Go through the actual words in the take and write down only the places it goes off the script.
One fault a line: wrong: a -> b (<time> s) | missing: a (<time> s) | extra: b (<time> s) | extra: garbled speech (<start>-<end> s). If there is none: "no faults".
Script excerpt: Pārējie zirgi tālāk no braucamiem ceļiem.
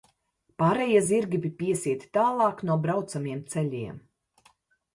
extra: bija piesieti (1.5 s)